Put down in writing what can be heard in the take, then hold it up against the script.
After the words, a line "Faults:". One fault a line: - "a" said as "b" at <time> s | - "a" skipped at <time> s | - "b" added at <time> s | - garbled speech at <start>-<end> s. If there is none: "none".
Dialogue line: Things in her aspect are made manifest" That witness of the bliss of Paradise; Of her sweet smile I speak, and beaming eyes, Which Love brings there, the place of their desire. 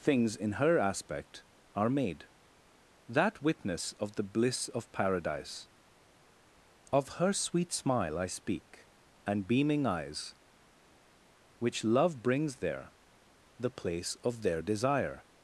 Things in her aspect are made" That witness of the bliss of Paradise; Of her sweet smile I speak, and beaming eyes, Which Love brings there, the place of their desire.
Faults:
- "manifest" skipped at 2.3 s